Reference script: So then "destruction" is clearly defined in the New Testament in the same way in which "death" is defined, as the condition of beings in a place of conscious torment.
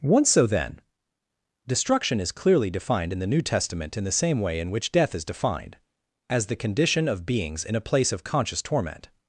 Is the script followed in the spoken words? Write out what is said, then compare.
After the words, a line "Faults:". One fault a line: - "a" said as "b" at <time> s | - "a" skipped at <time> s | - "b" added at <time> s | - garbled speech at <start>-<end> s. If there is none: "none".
once So then "destruction" is clearly defined in the New Testament in the same way in which "death" is defined, as the condition of beings in a place of conscious torment.
Faults:
- "once" added at 0.0 s